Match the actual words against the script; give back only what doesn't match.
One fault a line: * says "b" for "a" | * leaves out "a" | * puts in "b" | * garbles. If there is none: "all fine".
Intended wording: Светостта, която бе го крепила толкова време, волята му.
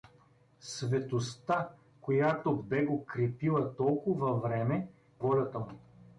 all fine